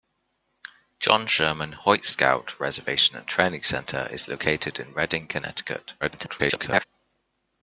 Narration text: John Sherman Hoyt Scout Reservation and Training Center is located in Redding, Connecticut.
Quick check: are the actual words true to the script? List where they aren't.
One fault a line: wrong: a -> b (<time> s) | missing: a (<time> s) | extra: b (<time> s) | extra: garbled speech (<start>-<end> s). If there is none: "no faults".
extra: garbled speech (6.0-6.8 s)